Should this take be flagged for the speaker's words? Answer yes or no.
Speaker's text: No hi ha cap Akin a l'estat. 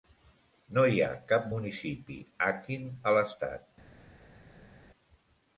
yes